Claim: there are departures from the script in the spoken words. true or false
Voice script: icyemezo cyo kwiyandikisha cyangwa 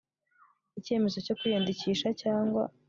false